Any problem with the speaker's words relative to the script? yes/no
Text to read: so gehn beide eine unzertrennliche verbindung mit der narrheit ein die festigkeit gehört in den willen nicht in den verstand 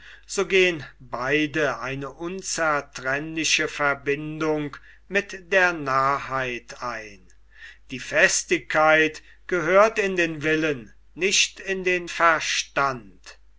no